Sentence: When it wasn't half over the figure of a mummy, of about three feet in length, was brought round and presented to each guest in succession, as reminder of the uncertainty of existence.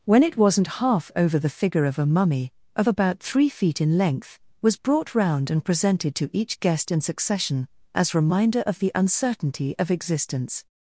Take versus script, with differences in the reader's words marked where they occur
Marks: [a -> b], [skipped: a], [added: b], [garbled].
When it wasn't half over the figure of a mummy, of about three feet in length, was brought round and presented to each guest in succession, as reminder of the uncertainty of existence.